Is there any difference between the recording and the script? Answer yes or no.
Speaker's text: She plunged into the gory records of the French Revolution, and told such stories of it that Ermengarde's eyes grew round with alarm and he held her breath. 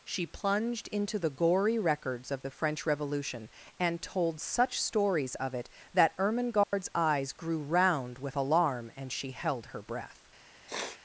yes